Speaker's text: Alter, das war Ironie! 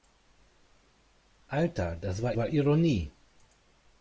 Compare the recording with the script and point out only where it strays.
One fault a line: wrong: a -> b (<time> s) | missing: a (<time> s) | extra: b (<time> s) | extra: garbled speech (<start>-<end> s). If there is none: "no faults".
extra: war (2.4 s)